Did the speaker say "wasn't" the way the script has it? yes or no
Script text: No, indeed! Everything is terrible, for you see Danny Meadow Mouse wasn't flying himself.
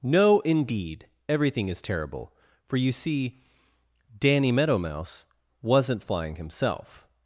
yes